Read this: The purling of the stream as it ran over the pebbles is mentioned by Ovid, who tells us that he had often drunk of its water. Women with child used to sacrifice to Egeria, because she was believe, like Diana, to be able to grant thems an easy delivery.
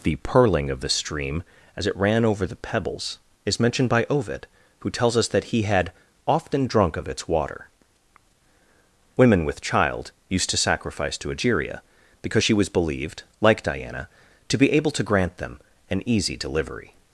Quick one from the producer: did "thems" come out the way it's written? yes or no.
no